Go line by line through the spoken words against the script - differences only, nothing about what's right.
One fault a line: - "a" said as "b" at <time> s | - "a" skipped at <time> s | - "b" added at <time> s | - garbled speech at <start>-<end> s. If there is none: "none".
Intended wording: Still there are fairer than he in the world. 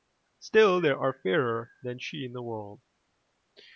- "he" said as "she" at 2.0 s